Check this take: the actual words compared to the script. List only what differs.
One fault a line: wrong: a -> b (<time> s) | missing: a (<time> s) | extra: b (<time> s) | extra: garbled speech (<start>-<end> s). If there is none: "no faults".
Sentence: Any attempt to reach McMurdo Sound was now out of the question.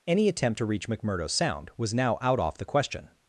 wrong: of -> off (2.4 s)